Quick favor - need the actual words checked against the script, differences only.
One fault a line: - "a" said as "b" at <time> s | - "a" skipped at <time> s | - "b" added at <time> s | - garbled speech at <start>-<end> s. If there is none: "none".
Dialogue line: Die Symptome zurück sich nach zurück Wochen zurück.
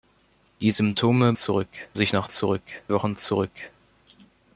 none